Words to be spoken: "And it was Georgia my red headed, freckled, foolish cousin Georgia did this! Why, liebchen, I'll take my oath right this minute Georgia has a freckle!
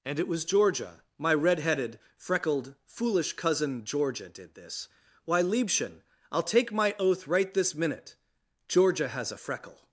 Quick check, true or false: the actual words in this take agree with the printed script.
true